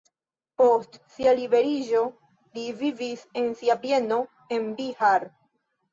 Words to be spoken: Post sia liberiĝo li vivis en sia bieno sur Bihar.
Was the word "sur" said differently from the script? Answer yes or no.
yes